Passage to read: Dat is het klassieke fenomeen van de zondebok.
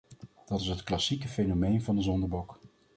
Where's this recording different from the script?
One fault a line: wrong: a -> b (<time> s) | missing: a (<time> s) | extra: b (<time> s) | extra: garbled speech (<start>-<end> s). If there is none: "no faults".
no faults